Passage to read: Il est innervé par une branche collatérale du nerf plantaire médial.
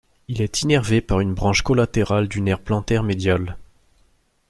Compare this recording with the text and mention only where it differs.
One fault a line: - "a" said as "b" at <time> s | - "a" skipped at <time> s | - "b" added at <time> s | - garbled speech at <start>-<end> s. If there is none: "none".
none